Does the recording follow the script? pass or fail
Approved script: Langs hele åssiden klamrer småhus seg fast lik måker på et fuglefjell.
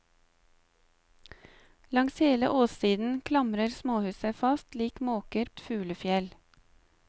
fail